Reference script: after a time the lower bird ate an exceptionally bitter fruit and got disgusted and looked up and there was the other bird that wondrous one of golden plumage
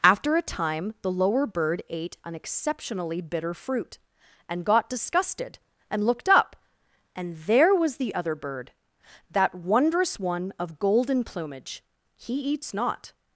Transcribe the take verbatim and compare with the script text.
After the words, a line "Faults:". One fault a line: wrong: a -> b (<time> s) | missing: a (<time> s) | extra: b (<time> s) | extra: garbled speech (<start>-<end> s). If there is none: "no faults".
after a time the lower bird ate an exceptionally bitter fruit and got disgusted and looked up and there was the other bird that wondrous one of golden plumage he eats not
Faults:
extra: he eats not (12.2 s)